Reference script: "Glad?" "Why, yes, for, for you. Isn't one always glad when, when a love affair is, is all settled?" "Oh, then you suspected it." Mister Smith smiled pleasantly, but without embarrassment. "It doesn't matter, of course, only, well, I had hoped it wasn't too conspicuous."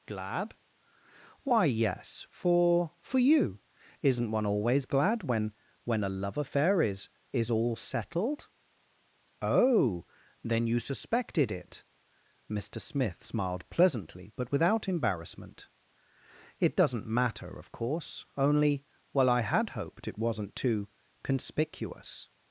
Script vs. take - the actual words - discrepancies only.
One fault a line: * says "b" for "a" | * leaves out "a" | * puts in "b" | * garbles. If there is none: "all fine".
all fine